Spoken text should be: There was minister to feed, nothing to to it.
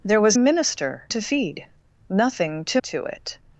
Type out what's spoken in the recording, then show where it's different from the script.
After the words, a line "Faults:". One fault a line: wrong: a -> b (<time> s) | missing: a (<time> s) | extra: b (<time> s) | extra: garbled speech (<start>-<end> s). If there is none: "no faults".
There was minister to feed, nothing to to it.
Faults:
no faults